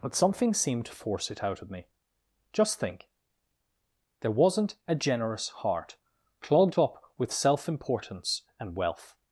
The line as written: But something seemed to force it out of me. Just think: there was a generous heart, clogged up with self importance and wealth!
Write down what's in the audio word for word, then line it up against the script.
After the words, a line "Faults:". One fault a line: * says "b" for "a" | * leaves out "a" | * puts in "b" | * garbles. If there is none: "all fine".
But something seemed to force it out of me. Just think: there wasn't a generous heart, clogged up with self importance and wealth!
Faults:
* says "wasn't" for "was"